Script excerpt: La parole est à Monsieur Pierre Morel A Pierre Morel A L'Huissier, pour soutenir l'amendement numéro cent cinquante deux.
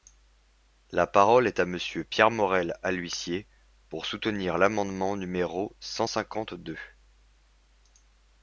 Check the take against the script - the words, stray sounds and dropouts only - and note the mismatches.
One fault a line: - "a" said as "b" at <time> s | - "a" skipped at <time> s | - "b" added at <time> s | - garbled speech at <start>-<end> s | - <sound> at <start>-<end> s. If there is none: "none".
- "Pierre Morel A" skipped at 2.9 s